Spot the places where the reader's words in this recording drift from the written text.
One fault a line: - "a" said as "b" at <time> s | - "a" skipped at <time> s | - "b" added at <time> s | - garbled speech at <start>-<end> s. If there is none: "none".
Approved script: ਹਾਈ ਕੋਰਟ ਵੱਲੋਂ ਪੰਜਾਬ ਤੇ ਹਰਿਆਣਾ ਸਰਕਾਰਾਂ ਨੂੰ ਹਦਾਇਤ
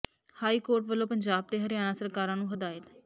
none